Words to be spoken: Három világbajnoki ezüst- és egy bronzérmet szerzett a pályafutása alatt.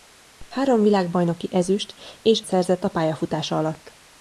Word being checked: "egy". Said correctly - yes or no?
no